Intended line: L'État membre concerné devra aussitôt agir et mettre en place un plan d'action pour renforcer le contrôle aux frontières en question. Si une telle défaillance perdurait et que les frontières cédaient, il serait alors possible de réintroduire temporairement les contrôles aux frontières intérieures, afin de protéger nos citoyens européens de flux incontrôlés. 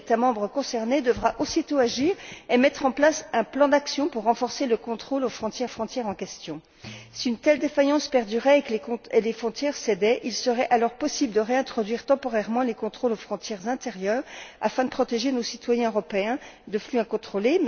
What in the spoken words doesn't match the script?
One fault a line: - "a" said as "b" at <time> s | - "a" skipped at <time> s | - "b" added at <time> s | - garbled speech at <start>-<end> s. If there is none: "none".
- "frontières" added at 5.7 s